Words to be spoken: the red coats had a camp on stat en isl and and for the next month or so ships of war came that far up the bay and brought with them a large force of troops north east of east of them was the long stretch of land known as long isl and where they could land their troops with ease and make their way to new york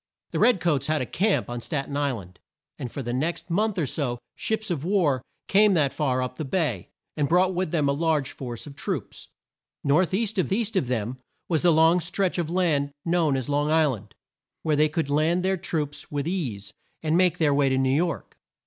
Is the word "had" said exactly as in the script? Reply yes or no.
yes